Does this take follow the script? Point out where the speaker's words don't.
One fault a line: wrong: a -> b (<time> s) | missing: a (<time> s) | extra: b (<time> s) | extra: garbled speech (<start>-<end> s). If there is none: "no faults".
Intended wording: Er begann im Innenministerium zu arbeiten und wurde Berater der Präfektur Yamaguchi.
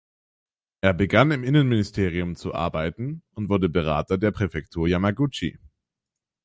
no faults